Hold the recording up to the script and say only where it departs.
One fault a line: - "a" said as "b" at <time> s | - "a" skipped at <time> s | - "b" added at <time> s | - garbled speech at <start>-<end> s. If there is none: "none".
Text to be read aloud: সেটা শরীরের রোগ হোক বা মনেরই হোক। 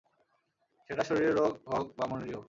none